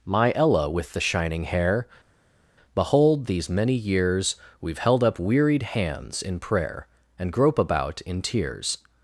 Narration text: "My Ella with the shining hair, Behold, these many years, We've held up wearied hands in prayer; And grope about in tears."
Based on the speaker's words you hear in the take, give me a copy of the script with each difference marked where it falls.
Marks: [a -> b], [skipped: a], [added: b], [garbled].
"My Ella with the shining hair, Behold, these many years, We've held up wearied hands in prayer; And grope about in tears."